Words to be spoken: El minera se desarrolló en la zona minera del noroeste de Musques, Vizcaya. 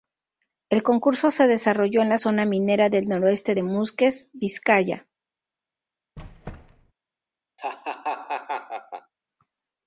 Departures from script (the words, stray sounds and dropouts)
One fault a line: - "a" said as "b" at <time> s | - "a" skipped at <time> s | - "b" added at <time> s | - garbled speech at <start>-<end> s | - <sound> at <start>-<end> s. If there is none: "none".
- "minera" said as "concurso" at 0.8 s
- squeak at 6.2-6.9 s
- laugh at 7.6-9.1 s